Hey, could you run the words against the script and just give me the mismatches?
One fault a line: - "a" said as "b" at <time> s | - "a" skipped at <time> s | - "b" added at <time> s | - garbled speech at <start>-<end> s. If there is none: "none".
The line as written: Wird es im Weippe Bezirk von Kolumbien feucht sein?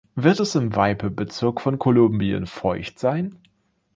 none